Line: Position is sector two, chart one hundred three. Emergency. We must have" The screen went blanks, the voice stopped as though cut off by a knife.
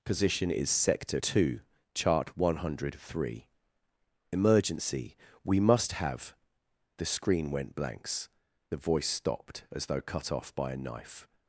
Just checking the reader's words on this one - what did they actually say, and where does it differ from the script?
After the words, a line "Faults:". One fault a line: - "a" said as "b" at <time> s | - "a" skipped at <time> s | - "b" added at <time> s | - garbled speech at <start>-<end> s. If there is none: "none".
Position is sector two, chart one hundred three. Emergency. We must have" The screen went blanks, the voice stopped as though cut off by a knife.
Faults:
none